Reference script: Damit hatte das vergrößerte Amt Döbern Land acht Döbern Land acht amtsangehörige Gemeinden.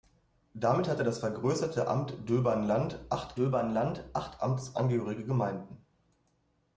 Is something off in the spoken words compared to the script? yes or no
no